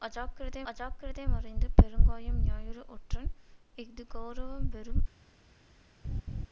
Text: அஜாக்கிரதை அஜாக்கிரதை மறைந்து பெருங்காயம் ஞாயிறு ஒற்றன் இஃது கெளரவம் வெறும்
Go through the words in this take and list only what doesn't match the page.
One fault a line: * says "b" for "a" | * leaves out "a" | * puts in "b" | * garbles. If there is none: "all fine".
all fine